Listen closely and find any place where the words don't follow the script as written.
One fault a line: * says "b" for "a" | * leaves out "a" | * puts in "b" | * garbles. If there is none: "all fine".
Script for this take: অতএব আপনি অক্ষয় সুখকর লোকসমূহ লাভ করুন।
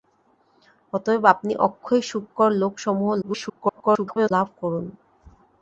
* garbles